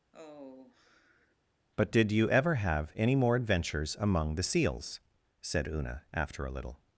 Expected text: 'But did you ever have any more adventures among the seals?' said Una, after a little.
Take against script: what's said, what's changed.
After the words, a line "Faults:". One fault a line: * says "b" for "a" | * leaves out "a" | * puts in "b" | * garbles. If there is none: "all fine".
'But did you ever have any more adventures among the seals?' said Una, after a little.
Faults:
all fine